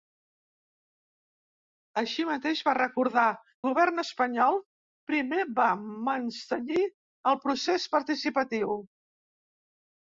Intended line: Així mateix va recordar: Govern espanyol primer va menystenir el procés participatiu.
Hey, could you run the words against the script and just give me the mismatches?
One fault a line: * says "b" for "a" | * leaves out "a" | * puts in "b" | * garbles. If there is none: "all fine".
all fine